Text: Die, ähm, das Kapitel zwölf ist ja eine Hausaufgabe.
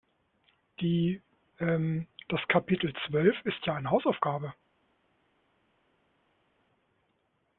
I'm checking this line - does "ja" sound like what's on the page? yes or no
yes